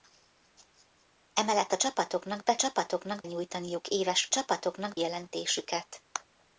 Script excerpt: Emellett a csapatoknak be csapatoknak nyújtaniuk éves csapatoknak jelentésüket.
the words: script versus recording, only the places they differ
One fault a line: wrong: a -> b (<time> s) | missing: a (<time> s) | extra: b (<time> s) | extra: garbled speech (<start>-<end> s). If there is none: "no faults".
no faults